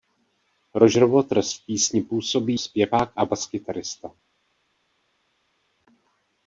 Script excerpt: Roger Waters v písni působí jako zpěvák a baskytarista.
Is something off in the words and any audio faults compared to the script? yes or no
yes